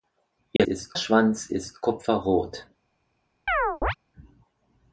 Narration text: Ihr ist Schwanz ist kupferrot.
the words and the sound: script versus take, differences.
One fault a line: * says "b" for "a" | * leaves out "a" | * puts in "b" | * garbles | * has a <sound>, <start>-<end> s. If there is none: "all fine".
* has a dropout, 0.6-0.6 s
* has a chirp, 3.5-3.9 s